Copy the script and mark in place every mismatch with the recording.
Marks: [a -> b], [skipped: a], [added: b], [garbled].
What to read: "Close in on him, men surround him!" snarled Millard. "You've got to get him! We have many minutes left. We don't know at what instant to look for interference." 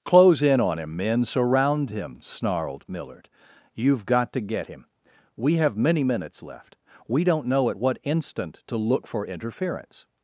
"Close in on him, men surround him!" snarled Millard. "You've got to get him! We have many minutes left. We don't know at what instant to look for interference."